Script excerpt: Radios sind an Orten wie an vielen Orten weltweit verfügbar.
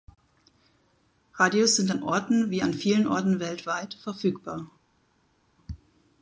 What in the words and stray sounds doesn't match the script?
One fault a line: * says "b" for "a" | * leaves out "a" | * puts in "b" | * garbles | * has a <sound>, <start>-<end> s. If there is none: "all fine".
all fine